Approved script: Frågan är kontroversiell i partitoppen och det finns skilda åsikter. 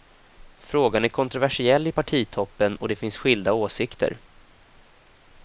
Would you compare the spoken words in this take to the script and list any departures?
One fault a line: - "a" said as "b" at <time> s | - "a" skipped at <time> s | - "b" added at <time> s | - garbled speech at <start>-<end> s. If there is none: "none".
none